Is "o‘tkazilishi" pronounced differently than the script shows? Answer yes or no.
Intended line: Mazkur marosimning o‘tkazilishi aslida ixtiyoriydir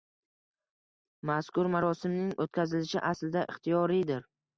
no